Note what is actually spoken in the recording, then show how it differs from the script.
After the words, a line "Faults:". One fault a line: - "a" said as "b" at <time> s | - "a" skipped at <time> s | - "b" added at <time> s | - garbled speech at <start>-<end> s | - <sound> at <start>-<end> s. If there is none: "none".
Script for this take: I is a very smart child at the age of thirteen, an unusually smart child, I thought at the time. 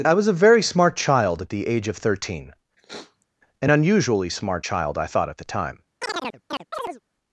I was a very smart child at the age of thirteen, an unusually smart child, I thought at the time.
Faults:
- "is" said as "was" at 0.1 s
- sniff at 2.8-3.3 s
- chirp at 6.0-7.0 s